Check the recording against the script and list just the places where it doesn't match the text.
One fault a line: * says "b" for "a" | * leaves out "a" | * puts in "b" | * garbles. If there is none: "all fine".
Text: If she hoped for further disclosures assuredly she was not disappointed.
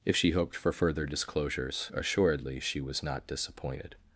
all fine